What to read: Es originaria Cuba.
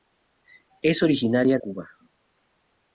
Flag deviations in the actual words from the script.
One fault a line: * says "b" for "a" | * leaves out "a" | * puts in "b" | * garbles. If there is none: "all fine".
all fine